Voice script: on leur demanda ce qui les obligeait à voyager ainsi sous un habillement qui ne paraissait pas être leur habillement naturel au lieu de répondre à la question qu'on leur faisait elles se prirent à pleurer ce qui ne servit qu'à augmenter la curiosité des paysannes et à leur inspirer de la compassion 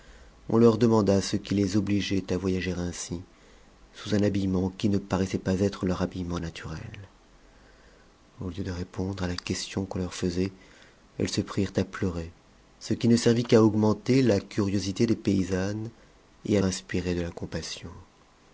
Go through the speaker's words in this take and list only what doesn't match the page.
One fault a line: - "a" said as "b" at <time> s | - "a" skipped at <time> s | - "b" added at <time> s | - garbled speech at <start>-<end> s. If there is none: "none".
- "leur" skipped at 16.6 s